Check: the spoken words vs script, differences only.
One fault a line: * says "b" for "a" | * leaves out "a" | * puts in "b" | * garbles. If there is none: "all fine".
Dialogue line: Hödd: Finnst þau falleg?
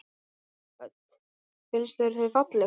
* puts in "þér"